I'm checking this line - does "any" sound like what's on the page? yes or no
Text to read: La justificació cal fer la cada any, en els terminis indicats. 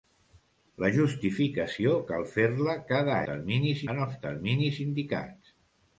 no